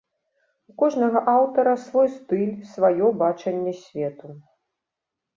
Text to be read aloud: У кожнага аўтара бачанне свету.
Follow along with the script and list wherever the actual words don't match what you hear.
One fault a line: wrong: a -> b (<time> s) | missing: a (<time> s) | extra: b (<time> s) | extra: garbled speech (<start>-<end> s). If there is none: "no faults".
extra: свой стыль сваё (1.9 s)